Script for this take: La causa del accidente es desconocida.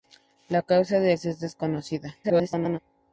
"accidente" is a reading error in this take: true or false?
true